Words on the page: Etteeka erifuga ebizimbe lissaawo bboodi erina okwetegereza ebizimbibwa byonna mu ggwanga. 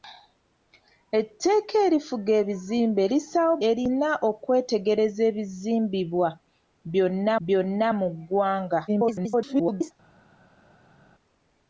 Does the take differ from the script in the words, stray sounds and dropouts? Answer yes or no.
yes